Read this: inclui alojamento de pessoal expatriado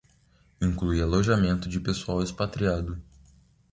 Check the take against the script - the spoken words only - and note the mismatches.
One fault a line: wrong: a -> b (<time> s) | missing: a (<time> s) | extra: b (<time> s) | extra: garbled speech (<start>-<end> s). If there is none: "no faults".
no faults